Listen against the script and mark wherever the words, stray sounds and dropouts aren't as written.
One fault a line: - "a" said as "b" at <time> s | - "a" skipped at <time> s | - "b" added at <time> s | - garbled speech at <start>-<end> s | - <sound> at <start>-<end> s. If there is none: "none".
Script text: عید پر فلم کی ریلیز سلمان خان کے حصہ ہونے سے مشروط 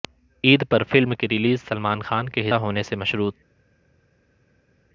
- "حصہ" skipped at 2.5 s